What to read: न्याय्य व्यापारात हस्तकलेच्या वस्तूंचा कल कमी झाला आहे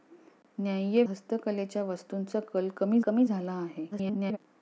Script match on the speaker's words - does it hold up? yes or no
no